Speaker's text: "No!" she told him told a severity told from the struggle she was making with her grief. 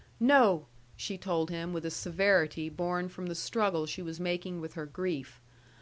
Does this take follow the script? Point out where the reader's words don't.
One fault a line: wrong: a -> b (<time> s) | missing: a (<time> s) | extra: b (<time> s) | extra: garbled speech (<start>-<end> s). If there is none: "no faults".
wrong: told -> with (1.7 s)
wrong: told -> born (2.7 s)